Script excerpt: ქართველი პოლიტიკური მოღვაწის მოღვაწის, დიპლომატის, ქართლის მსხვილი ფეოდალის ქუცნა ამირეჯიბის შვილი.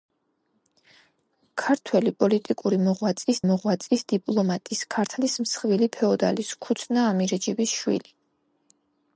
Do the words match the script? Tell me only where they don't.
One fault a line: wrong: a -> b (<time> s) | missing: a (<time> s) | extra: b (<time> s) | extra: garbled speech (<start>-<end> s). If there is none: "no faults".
no faults